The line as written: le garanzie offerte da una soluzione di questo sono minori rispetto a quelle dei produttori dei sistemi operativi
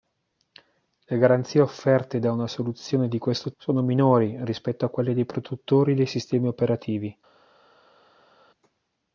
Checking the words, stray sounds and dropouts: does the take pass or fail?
pass